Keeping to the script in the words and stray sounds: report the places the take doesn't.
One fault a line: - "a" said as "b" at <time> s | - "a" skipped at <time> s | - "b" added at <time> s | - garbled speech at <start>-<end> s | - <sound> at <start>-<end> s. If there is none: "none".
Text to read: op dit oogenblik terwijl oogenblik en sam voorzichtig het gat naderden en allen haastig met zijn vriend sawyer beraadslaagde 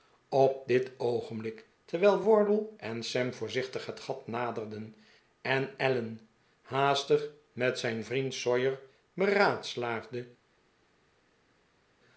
- "oogenblik" said as "wardle" at 2.2 s